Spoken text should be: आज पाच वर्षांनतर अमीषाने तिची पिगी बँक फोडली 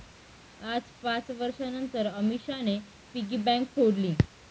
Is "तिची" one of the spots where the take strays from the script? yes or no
yes